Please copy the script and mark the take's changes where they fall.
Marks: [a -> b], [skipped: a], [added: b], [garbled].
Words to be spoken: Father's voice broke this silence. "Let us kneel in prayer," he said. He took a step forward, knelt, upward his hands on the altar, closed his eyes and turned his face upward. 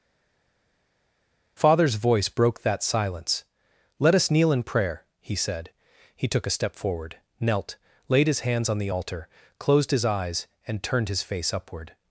Father's voice broke [this -> that] silence. "Let us kneel in prayer," he said. He took a step forward, knelt, [upward -> laid] his hands on the altar, closed his eyes and turned his face upward.